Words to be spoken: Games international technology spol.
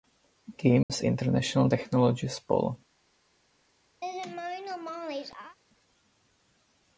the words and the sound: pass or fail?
fail